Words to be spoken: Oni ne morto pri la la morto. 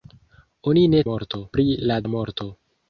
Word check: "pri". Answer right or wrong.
right